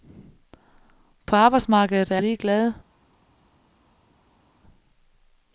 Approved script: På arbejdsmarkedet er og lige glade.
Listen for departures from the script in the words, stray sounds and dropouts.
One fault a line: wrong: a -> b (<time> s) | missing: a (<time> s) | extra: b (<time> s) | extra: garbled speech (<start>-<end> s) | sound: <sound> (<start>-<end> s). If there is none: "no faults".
no faults